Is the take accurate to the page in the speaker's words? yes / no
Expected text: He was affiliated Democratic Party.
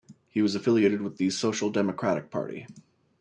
no